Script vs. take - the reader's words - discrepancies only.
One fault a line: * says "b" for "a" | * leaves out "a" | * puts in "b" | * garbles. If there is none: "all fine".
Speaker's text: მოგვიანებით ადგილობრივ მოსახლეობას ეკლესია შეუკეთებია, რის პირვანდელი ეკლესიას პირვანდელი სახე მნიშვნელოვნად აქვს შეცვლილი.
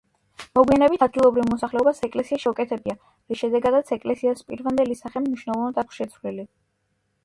* says "შედეგადაც" for "პირვანდელი"